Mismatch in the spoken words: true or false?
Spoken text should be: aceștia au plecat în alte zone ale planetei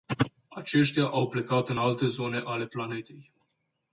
false